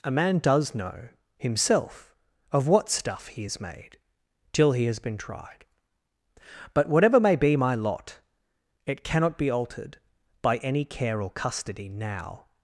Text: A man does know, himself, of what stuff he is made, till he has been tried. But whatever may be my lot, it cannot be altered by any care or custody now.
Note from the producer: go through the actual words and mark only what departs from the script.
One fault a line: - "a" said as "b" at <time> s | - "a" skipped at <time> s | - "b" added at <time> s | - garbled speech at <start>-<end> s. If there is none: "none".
none